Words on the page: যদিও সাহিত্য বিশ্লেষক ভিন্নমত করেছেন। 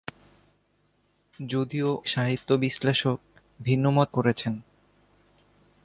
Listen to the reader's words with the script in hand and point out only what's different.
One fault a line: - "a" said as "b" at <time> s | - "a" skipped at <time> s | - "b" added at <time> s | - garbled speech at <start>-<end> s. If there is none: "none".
none